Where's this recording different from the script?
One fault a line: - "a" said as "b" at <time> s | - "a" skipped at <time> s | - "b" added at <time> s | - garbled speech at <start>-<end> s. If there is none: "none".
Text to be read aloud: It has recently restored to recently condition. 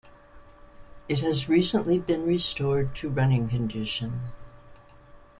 - "been" added at 2.0 s
- "recently" said as "running" at 3.1 s